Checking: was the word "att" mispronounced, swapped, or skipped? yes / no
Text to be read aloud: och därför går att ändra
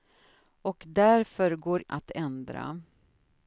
no